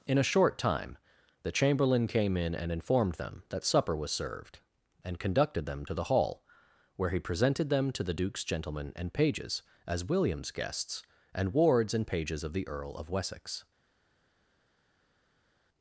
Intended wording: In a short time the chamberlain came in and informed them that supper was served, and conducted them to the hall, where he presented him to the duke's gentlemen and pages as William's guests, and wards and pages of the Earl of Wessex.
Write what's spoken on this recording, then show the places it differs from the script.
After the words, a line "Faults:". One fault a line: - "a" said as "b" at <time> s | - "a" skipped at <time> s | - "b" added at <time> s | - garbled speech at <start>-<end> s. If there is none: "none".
In a short time the chamberlain came in and informed them that supper was served, and conducted them to the hall, where he presented them to the duke's gentlemen and pages as William's guests, and wards and pages of the Earl of Wessex.
Faults:
- "him" said as "them" at 7.7 s